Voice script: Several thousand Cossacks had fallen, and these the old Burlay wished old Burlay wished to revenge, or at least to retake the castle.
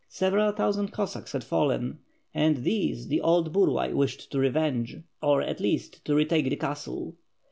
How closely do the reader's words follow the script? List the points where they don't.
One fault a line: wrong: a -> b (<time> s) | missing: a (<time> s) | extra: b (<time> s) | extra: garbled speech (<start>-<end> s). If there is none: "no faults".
missing: old Burlay wished (4.3 s)